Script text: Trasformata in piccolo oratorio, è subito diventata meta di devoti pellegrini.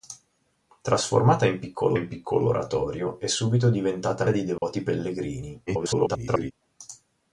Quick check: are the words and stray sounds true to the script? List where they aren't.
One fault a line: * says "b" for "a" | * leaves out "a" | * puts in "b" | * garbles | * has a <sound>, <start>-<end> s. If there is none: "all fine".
* puts in "in piccolo"
* leaves out "meta"
* has a dropout, 4.6-4.6 s
* garbles